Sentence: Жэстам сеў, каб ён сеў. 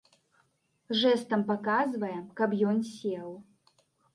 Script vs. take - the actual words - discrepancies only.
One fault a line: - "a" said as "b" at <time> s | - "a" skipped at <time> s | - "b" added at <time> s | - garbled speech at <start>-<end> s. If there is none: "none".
- "сеў" said as "паказвае" at 1.5 s